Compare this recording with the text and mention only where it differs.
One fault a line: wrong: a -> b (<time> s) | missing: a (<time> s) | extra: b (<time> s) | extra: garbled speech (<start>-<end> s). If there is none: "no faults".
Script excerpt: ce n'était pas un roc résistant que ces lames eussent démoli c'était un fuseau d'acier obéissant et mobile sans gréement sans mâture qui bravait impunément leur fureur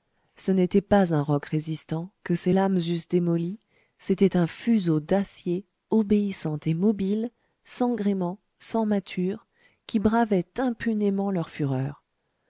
no faults